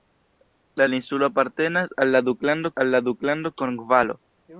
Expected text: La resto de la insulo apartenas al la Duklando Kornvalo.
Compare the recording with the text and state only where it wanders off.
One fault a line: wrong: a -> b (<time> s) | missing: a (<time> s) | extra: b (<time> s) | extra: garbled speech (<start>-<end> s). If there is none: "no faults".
missing: resto de (0.9 s)
extra: al la Duklando (2.7 s)